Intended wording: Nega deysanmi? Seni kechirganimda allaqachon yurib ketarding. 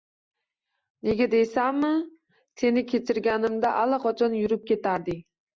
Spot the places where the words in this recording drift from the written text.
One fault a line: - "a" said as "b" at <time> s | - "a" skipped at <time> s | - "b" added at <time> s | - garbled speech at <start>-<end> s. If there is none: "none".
none